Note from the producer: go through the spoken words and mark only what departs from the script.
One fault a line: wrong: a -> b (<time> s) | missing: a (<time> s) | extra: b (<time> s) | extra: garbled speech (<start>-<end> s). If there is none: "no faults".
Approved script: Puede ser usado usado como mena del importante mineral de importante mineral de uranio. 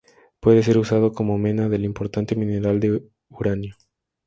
missing: usado (1.1 s)
missing: importante mineral de (3.0 s)